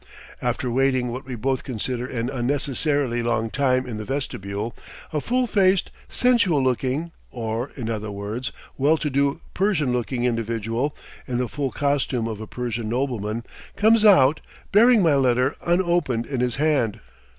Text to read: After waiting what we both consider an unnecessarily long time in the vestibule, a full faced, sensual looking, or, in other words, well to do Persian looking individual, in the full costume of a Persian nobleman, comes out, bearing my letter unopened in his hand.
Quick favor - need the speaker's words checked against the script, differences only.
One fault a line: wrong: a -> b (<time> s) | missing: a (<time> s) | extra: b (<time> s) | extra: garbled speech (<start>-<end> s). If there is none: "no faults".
no faults